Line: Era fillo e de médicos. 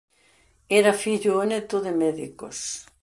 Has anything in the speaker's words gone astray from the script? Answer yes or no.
yes